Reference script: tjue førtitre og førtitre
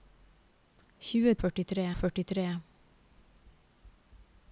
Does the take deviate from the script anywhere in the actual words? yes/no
no